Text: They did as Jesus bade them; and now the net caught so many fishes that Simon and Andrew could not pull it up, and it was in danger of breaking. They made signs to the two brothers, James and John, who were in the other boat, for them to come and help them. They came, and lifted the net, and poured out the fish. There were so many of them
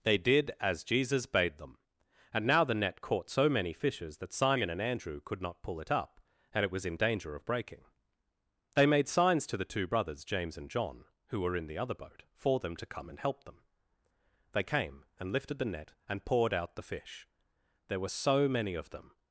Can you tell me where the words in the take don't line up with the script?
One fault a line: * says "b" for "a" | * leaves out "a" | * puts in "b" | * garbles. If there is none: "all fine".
all fine